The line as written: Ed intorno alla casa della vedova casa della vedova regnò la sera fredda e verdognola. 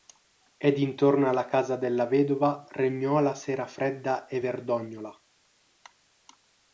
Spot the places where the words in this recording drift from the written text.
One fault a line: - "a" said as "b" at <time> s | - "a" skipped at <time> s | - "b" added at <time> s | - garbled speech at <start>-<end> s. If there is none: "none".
- "casa della vedova" skipped at 2.6 s